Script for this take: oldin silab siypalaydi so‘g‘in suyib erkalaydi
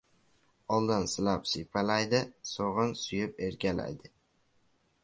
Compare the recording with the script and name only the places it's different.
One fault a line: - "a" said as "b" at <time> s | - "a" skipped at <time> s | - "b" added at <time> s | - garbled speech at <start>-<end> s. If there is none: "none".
none